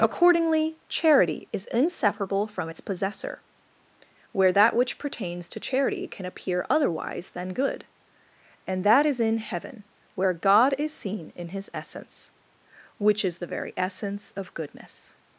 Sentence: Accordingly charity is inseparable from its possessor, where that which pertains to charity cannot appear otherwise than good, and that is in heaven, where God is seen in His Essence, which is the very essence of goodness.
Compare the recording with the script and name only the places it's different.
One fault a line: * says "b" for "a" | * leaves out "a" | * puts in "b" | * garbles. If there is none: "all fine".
* says "can" for "cannot"